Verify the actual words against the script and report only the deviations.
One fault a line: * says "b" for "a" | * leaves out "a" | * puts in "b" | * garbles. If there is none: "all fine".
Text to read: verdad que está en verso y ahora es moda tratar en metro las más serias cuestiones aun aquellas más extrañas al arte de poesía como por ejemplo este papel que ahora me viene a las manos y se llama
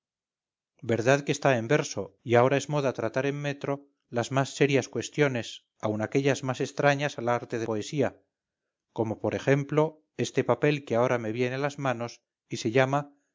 all fine